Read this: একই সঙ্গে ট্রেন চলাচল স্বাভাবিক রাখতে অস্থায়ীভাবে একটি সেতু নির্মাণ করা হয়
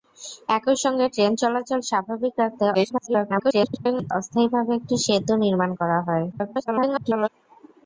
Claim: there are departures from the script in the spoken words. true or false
true